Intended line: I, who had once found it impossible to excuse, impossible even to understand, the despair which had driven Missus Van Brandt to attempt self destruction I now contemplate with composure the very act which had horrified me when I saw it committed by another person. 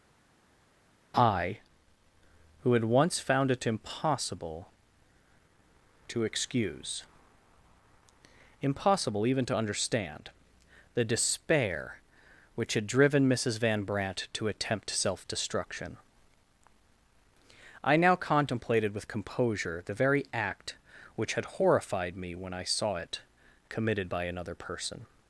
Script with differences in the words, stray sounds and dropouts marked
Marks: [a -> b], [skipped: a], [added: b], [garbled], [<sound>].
I, who had once found it impossible to excuse, impossible even to understand, the despair which had driven Missus Van Brandt to attempt self destruction I now [contemplate -> contemplated] with composure the very act which had horrified me when I saw it committed by another person.